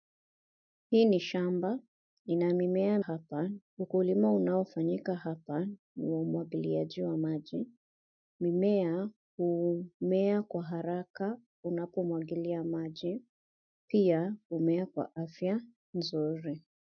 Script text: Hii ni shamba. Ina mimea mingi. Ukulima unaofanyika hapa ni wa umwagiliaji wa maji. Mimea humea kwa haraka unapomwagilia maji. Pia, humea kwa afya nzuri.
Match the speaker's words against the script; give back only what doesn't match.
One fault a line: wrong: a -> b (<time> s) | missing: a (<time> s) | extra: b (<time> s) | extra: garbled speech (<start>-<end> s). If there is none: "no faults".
wrong: mingi -> hapa (3.0 s)